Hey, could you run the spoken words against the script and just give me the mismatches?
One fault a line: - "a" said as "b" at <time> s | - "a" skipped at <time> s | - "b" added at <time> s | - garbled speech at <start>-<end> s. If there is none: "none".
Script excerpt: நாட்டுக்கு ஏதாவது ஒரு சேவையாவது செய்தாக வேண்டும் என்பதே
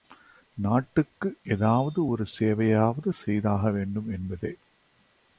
none